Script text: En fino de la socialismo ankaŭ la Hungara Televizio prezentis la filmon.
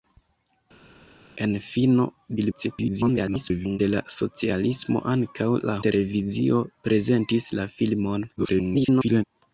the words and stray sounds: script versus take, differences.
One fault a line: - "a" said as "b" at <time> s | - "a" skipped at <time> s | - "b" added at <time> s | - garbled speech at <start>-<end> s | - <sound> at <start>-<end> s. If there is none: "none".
- garbled speech at 2.4-3.8 s
- "Hungara" skipped at 5.8 s
- garbled speech at 8.4-9.2 s